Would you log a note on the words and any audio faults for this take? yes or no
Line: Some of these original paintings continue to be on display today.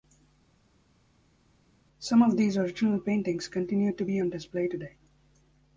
no